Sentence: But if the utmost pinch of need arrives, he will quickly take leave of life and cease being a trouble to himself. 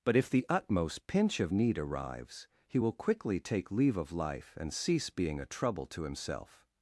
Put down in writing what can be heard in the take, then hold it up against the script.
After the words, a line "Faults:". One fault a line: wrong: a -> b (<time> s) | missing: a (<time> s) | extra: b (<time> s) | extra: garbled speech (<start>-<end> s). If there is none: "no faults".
But if the utmost pinch of need arrives, he will quickly take leave of life and cease being a trouble to himself.
Faults:
no faults